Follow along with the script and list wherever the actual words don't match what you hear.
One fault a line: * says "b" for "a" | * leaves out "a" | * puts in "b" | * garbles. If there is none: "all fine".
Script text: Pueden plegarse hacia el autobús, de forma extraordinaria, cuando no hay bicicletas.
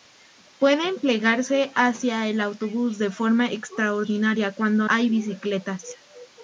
* leaves out "no"